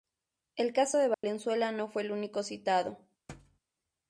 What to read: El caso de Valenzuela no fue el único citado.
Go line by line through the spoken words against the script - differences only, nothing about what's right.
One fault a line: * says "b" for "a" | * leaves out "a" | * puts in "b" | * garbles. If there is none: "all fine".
all fine